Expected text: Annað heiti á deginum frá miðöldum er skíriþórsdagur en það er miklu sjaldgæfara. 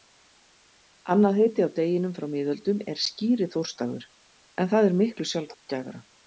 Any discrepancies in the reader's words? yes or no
no